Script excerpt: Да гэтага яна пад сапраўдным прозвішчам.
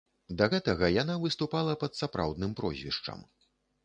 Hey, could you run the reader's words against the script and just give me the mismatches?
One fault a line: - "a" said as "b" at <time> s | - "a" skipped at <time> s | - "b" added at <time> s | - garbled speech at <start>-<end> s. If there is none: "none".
- "выступала" added at 1.2 s